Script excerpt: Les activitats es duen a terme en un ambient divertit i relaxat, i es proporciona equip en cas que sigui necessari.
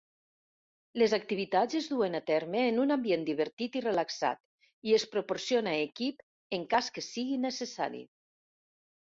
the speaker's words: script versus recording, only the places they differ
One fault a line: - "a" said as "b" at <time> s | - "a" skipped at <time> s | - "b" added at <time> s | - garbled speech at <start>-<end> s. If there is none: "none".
none